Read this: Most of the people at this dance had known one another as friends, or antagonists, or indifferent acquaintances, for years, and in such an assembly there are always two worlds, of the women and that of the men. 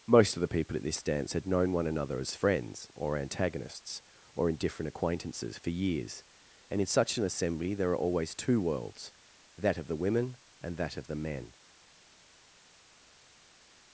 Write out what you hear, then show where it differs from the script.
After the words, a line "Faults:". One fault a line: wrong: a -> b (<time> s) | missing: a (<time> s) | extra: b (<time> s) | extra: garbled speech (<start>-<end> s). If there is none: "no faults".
Most of the people at this dance had known one another as friends, or antagonists, or indifferent acquaintances, for years, and in such an assembly there are always two worlds, that of the women and that of the men.
Faults:
extra: that (9.6 s)